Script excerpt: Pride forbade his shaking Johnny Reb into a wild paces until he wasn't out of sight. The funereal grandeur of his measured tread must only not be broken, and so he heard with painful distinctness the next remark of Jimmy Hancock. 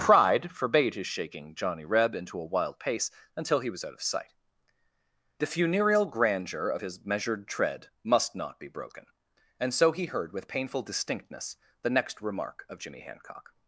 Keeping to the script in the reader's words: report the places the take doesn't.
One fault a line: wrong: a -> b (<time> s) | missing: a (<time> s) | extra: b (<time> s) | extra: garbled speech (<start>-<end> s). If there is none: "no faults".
wrong: paces -> pace (2.8 s)
wrong: wasn't -> was (3.7 s)
missing: only (8.3 s)